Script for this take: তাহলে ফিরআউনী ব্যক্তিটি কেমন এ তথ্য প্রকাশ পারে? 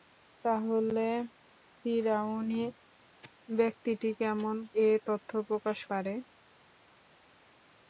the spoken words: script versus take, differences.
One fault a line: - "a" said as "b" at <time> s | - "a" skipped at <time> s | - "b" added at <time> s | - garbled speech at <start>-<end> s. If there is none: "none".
none